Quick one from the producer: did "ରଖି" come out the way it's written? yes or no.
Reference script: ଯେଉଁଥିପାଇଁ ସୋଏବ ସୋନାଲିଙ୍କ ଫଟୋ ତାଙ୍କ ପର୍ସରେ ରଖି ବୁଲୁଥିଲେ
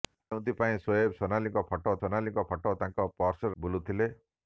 no